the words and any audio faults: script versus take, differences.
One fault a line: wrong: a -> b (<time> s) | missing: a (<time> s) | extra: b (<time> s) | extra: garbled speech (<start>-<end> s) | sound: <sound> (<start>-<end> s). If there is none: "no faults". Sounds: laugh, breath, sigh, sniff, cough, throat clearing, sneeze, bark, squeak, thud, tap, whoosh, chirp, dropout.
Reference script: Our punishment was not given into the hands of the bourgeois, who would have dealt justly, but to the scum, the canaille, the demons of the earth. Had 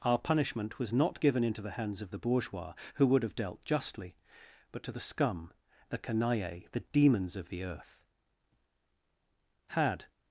no faults